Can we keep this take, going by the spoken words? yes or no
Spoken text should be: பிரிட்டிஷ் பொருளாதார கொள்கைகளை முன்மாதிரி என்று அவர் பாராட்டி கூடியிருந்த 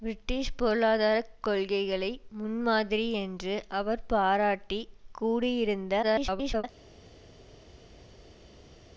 no